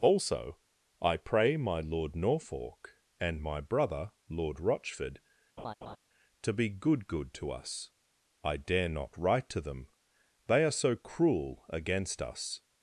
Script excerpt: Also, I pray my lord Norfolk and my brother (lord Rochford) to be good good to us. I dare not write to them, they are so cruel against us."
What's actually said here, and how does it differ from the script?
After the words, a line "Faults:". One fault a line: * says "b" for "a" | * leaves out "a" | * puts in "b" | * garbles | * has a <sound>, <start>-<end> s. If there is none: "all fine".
Also, I pray my lord Norfolk and my brother (lord Rochford) to be good good to us. I dare not write to them, they are so cruel against us."
Faults:
* has a laugh, 5.6-6.0 s